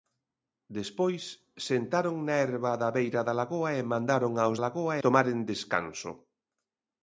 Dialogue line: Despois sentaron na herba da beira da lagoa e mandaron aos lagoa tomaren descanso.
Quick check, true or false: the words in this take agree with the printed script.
true